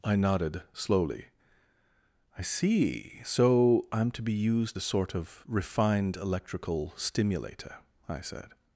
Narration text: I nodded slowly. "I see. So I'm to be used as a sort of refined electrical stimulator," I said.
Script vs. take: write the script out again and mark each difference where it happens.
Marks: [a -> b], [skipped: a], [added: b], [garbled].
I nodded slowly. "I see. So I'm to be used [skipped: as] a sort of refined electrical stimulator," I said.